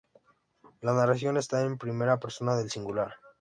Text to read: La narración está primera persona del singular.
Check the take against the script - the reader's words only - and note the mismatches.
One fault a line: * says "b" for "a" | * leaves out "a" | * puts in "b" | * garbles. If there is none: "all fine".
* puts in "en"